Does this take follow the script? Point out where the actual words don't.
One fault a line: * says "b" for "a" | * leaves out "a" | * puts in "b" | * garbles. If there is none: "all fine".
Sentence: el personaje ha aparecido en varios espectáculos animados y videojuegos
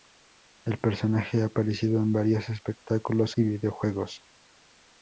* leaves out "animados"